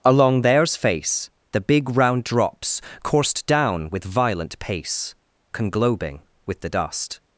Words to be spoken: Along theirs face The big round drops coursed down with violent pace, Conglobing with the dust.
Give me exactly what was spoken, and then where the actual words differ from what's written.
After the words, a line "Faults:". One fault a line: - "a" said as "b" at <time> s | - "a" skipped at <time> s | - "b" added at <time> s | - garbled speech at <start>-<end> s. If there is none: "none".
Along theirs face The big round drops coursed down with violent pace, Conglobing with the dust.
Faults:
none